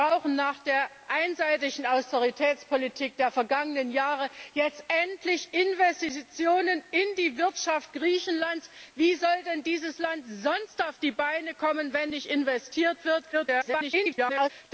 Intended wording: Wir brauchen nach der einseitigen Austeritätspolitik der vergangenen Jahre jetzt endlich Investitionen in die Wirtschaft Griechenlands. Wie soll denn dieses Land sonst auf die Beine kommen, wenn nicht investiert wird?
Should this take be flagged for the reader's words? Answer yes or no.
yes